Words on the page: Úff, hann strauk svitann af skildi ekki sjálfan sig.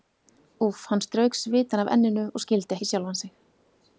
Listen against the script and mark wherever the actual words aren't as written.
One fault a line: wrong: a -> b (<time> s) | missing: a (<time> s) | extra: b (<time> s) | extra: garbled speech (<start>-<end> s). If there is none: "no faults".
extra: enninu og (2.0 s)